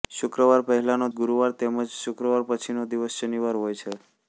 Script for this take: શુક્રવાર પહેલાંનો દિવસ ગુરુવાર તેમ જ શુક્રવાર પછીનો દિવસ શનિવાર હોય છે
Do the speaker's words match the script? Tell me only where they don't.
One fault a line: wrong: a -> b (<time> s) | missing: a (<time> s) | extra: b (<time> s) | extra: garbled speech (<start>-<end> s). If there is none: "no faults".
missing: દિવસ (1.1 s)